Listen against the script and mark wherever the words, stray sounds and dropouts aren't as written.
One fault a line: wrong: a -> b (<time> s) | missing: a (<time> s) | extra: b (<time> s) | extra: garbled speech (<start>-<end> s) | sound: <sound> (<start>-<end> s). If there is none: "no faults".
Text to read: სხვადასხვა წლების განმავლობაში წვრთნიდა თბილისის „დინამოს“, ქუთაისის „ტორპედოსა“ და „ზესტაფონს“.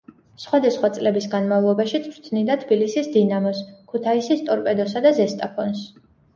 no faults